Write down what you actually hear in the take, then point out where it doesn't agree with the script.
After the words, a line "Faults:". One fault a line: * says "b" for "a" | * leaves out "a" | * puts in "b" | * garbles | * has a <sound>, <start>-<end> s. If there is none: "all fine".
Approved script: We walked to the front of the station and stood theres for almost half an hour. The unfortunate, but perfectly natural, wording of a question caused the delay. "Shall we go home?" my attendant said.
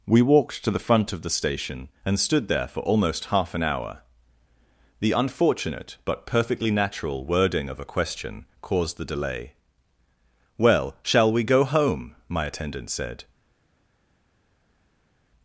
We walked to the front of the station and stood there for almost half an hour. The unfortunate, but perfectly natural, wording of a question caused the delay. "Well, shall we go home?" my attendant said.
Faults:
* says "there" for "theres"
* puts in "Well"